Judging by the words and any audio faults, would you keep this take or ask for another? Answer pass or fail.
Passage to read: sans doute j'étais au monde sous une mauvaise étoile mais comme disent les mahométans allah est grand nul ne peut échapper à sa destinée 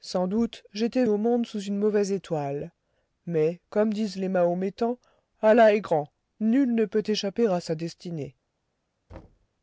fail